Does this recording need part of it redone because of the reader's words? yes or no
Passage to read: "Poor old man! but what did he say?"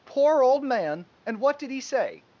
yes